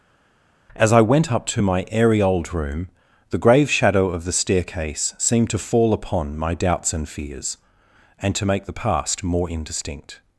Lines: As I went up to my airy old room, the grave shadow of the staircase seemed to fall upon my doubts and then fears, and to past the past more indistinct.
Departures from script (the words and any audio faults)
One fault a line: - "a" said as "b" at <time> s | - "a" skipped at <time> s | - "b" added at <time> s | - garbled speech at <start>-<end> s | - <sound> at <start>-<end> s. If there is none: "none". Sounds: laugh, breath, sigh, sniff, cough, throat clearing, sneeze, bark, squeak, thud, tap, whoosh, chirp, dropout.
- "then" skipped at 7.1 s
- "past" said as "make" at 8.5 s